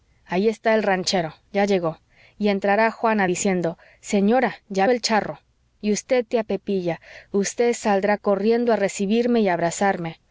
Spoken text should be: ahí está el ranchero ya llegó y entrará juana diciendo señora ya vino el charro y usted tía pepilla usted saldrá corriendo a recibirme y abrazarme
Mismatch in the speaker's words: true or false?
true